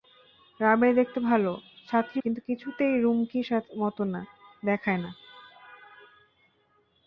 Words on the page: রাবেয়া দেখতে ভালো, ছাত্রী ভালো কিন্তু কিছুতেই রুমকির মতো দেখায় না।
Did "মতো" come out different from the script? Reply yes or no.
no